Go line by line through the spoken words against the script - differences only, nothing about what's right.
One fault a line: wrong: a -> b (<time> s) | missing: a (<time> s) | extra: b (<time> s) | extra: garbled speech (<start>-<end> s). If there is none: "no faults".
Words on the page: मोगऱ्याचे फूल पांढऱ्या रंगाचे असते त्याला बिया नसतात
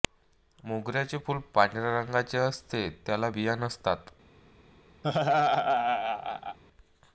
no faults